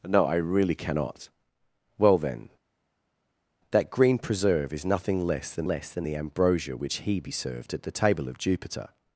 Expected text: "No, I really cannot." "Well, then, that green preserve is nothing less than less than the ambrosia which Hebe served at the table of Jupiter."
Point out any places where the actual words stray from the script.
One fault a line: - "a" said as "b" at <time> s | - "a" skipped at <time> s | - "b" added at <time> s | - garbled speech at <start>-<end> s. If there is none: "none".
none